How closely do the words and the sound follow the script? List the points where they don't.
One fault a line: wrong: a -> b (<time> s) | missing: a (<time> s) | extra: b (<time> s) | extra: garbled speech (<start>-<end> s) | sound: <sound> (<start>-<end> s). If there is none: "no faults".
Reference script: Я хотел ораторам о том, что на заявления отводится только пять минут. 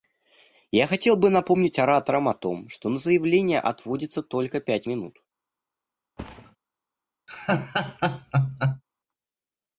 extra: бы напомнить (1.1 s)
sound: thud (6.2-6.6 s)
sound: laugh (7.3-8.8 s)